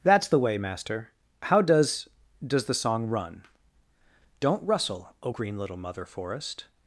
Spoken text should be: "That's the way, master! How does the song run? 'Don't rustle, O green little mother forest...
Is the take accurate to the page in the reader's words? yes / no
no